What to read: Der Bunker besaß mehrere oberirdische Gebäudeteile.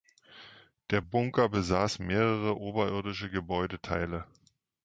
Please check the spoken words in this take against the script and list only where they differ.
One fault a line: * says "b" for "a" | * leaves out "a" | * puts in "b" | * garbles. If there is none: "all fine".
all fine